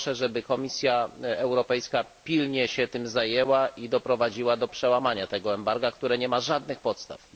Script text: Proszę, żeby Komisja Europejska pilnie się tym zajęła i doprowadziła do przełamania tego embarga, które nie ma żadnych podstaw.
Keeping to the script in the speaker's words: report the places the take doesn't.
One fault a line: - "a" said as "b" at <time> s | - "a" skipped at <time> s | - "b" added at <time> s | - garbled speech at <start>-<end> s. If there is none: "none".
none